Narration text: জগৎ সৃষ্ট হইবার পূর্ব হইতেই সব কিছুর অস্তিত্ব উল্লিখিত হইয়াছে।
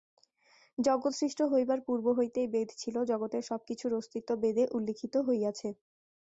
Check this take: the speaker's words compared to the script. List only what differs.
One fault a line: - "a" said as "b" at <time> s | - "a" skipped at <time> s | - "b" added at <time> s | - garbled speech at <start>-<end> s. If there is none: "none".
- "বেদ ছিল জগতের" added at 2.5 s
- "বেদে" added at 4.4 s